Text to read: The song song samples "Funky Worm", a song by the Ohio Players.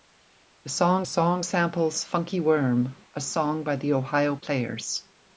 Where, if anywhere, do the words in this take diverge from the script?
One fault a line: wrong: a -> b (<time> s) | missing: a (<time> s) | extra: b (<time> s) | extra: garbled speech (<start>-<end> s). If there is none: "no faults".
no faults